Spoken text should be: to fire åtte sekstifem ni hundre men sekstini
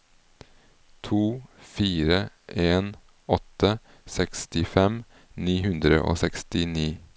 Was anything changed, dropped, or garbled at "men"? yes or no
yes